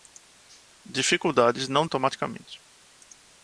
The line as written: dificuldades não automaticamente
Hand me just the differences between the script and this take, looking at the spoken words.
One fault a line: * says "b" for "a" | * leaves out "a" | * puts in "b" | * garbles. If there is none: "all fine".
all fine